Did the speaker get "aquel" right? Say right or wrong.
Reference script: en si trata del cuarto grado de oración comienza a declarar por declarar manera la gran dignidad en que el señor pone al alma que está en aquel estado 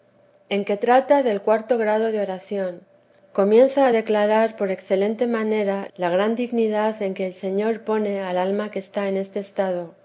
wrong